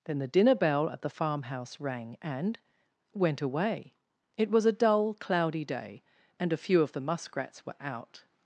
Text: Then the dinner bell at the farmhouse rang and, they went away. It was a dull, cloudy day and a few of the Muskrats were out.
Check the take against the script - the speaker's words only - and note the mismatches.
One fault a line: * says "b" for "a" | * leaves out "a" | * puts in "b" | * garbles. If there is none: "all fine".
* leaves out "they"